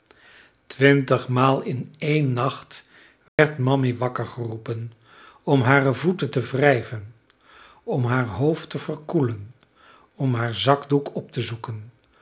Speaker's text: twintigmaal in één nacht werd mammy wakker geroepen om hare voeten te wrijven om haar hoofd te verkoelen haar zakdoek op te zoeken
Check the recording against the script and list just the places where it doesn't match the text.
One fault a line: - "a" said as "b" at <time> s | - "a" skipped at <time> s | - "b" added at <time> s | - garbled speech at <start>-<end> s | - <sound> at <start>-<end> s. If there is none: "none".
- dropout at 3.3-3.4 s
- "om" added at 10.2 s